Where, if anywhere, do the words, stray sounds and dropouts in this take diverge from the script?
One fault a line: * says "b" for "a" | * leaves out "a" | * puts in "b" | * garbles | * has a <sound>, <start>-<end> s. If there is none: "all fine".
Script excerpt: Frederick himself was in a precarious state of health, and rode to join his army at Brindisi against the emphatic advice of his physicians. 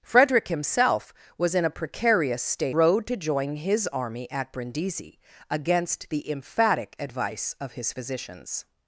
* leaves out "of health and"